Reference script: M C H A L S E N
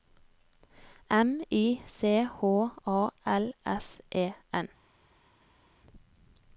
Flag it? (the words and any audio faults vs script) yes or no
yes